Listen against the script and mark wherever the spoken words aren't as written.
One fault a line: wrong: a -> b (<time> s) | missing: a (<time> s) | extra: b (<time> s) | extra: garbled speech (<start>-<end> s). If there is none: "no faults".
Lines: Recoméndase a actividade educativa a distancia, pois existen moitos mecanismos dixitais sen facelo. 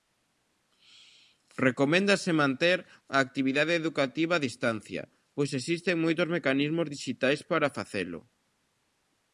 extra: manter (2.4 s)
wrong: sen -> para (7.5 s)